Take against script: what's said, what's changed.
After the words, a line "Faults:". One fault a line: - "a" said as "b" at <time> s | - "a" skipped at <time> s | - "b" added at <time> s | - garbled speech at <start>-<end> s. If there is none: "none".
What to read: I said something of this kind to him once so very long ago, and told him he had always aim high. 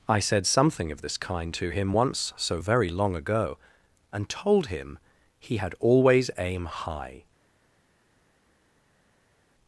I said something of this kind to him once so very long ago, and told him he had always aim high.
Faults:
none